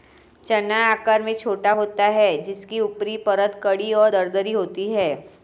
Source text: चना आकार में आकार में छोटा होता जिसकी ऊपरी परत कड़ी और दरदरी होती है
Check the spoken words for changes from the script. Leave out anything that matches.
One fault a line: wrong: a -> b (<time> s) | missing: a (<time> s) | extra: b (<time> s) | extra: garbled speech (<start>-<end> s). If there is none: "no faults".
missing: आकार में (1.3 s)
extra: है (2.1 s)